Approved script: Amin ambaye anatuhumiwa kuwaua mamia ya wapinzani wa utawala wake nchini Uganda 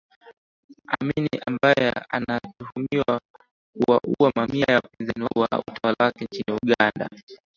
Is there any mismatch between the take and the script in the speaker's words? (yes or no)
no